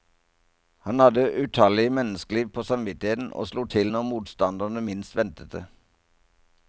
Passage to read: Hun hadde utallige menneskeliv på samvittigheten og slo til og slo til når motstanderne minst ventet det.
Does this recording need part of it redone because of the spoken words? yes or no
yes